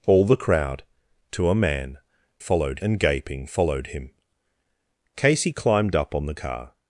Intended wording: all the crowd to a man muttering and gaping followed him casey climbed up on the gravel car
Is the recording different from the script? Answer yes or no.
yes